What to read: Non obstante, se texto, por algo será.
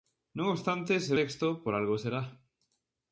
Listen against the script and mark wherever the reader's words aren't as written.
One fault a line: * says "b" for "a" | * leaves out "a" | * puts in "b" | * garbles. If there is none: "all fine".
all fine